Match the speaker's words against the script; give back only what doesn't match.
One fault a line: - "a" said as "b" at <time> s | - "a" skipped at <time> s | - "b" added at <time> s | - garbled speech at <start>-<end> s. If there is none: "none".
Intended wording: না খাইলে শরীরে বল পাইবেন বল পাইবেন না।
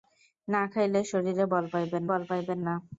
none